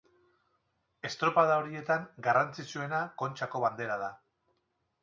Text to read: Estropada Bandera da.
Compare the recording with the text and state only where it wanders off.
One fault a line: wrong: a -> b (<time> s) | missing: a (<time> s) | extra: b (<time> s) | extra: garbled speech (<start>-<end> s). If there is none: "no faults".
extra: horietan garrantzitsuena Kontxako (1.6 s)